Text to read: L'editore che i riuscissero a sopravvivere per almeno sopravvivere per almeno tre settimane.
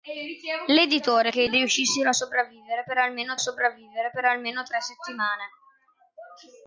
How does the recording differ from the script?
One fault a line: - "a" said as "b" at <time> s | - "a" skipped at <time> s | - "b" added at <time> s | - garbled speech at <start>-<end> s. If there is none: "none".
none